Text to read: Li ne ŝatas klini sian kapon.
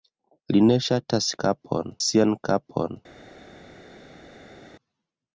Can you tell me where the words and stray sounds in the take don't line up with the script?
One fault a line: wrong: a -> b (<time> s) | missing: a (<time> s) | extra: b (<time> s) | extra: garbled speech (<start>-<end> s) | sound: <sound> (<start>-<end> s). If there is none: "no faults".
wrong: klini -> kapon (1.4 s)